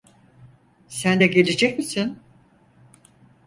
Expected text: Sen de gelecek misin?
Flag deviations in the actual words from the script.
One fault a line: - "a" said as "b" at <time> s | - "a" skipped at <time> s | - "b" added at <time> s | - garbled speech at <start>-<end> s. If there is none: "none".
none